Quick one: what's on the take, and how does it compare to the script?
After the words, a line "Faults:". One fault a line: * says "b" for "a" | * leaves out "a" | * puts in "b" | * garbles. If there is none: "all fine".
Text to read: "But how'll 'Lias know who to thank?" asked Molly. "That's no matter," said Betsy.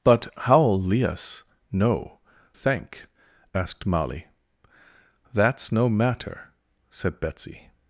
"But how'll 'Lias know thank?" asked Molly. "That's no matter," said Betsy.
Faults:
* leaves out "who to"